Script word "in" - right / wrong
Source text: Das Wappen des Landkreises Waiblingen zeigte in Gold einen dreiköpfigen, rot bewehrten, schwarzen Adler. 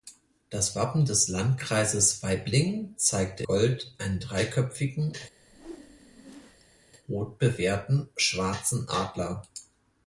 wrong